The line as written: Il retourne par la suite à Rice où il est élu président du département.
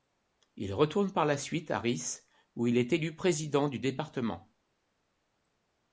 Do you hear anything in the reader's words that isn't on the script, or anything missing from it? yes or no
no